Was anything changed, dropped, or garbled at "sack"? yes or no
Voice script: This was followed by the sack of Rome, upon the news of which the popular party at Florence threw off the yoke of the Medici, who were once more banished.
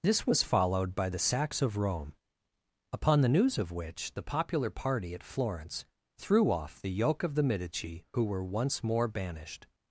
yes